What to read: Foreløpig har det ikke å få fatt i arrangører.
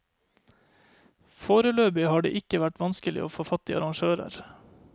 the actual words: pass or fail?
fail